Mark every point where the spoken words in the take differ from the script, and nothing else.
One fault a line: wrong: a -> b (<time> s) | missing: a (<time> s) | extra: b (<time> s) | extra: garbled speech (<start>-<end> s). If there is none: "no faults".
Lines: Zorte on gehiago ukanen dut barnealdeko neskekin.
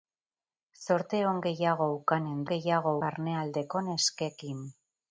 wrong: dut -> gehiago (2.5 s)